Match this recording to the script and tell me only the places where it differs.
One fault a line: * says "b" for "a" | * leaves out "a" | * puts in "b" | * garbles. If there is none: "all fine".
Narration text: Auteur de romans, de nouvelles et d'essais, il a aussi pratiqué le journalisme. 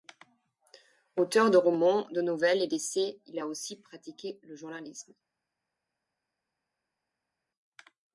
all fine